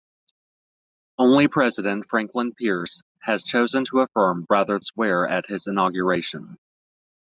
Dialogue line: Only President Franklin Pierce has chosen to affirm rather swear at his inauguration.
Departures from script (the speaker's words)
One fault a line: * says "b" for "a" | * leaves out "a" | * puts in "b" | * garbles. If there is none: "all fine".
all fine